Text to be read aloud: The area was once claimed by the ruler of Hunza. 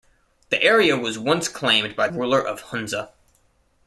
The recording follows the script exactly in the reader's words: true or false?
false